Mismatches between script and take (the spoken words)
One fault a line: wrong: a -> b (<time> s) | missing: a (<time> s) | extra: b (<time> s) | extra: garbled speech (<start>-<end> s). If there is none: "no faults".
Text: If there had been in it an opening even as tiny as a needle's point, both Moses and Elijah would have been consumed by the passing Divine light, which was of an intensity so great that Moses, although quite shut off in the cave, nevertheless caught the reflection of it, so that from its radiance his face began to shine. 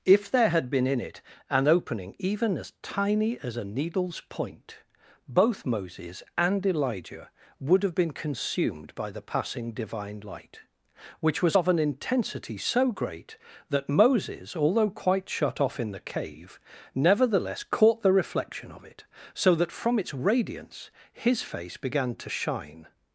no faults